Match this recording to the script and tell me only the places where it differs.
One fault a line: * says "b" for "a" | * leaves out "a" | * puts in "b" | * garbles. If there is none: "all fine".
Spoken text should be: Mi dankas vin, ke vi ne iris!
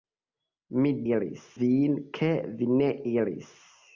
* says "iris" for "dankas"